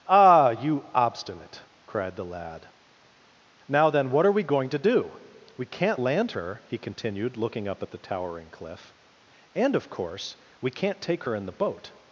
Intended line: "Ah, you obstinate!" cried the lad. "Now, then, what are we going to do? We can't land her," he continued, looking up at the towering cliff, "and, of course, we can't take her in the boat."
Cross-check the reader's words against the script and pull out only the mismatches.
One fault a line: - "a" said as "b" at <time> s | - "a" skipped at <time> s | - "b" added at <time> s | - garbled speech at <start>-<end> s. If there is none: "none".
none